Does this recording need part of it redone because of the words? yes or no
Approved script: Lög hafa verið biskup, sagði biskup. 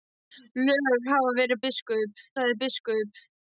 no